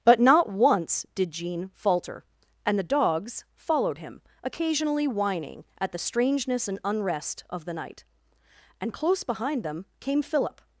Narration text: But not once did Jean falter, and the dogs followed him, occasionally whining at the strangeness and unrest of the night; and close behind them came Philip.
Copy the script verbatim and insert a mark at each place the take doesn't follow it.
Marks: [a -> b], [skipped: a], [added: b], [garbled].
But not once did Jean falter, and the dogs followed him, occasionally whining at the strangeness and unrest of the night; and close behind them came Philip.